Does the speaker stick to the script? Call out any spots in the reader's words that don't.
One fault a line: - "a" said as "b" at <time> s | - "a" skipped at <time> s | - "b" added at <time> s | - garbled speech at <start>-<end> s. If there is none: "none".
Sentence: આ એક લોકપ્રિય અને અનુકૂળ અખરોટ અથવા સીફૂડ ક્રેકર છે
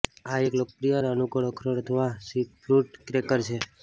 none